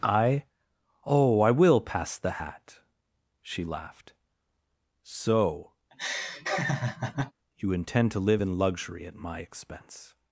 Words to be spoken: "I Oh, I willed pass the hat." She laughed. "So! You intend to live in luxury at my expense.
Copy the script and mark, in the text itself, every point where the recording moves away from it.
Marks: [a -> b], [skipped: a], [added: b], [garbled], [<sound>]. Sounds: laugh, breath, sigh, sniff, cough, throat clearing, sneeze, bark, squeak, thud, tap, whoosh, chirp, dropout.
"I Oh, I [willed -> will] pass the hat." She laughed. "So! [laugh] You intend to live in luxury at my expense.